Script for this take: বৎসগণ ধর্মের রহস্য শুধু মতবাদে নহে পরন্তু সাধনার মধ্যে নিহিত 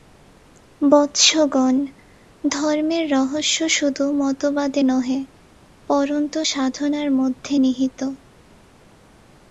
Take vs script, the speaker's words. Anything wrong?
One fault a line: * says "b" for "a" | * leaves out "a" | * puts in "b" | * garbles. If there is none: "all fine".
all fine